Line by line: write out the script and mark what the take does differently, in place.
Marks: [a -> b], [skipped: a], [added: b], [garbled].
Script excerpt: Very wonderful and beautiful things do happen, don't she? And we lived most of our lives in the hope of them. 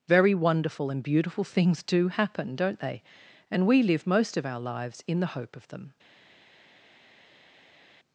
Very wonderful and beautiful things do happen, don't [she? -> they] And we [lived -> live] most of our lives in the hope of them.